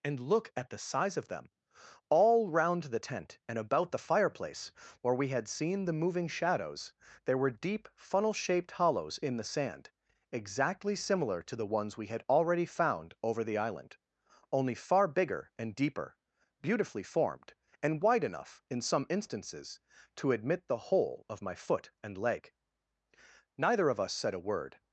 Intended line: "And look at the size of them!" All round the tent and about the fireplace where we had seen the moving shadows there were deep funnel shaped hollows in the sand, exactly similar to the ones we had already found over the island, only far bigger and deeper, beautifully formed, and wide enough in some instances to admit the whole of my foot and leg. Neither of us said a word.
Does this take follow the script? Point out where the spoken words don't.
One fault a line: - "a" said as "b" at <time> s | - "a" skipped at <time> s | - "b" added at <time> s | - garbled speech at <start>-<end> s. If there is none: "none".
none